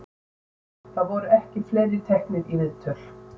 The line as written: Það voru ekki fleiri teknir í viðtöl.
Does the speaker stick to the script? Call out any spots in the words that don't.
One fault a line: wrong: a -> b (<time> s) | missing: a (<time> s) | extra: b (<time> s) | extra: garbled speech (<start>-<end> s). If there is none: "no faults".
no faults